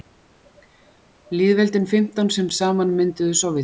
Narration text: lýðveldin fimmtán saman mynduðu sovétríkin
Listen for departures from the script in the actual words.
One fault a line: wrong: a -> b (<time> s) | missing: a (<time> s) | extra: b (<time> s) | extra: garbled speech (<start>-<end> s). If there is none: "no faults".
extra: sem (2.4 s)